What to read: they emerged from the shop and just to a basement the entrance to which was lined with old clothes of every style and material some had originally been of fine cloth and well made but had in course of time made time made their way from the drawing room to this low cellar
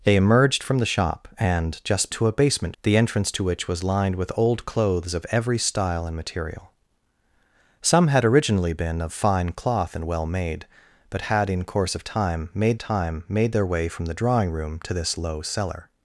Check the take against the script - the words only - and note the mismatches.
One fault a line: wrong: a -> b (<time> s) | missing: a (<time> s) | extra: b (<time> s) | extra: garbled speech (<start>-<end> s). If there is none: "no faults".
no faults